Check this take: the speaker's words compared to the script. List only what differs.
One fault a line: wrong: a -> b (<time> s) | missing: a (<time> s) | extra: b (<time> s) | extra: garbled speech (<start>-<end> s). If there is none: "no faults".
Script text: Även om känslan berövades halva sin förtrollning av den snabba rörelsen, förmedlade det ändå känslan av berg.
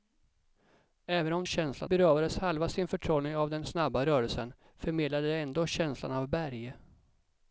no faults